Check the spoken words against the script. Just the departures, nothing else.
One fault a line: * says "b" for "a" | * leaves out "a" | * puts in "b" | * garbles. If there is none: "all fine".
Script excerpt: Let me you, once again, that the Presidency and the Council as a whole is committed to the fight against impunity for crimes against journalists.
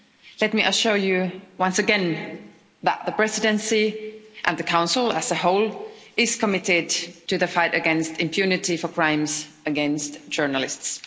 * puts in "assure"